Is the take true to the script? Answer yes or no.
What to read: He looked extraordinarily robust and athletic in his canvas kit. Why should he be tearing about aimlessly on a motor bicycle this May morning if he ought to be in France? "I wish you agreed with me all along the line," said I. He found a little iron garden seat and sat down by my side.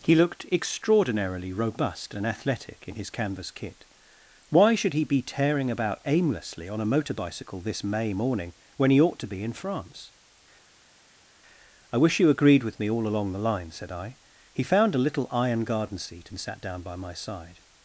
no